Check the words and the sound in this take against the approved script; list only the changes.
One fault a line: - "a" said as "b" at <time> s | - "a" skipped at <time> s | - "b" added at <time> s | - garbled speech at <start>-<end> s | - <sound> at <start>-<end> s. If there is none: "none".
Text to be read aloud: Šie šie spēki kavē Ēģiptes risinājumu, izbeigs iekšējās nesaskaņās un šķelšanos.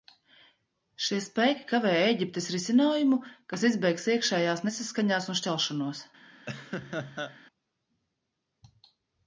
- "šie" skipped at 1.2 s
- "kas" added at 3.5 s
- laugh at 6.5-7.4 s